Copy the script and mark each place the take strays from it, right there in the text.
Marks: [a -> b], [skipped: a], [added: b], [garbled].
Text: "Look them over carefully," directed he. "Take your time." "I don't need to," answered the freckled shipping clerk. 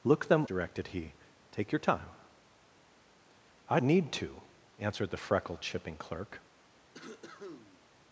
"Look them [skipped: over carefully,"] directed he. "Take your time." "I [skipped: don't] need to," answered the freckled shipping clerk.